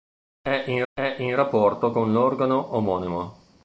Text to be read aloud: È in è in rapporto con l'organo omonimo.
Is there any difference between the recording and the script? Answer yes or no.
no